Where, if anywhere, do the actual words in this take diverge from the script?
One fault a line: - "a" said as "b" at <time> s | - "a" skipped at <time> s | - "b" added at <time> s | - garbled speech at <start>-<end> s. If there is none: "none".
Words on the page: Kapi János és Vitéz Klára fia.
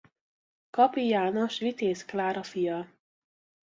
- "és" skipped at 1.6 s